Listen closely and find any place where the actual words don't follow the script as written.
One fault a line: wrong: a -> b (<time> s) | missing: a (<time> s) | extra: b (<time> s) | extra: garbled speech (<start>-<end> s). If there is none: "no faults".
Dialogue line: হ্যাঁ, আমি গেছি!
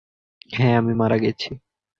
extra: মারা (0.9 s)